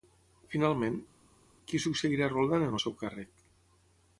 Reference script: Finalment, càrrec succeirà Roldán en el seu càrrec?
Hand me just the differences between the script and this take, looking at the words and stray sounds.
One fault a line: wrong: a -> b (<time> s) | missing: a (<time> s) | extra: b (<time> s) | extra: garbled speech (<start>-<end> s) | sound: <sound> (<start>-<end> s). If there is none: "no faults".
wrong: càrrec -> qui (1.7 s)